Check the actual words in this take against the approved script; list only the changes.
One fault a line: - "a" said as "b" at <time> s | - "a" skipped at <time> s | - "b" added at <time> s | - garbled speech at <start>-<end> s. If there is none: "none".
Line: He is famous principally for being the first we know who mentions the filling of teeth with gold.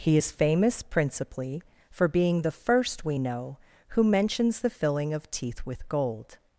none